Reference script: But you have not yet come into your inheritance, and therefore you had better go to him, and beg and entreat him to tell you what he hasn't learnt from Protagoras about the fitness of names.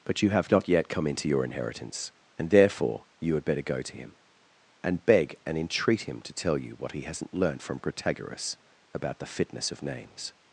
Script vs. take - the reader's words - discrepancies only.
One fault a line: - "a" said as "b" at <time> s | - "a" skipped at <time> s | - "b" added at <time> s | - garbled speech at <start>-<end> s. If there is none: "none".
none